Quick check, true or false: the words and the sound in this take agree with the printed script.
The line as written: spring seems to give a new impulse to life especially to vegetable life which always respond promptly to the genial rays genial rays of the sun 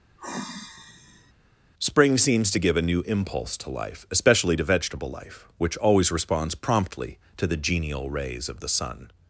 false